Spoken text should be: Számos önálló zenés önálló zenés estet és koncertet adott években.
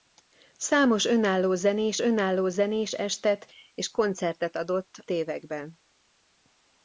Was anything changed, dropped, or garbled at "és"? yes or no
no